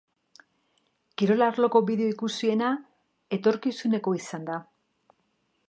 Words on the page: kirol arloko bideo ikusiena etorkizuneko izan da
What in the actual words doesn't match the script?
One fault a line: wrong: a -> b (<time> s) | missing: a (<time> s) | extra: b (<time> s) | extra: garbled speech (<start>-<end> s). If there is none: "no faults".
no faults